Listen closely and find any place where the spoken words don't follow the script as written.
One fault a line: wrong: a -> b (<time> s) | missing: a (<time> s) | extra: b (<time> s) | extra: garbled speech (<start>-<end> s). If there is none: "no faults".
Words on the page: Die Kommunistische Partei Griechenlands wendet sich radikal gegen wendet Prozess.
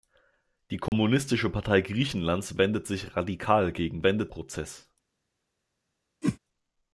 no faults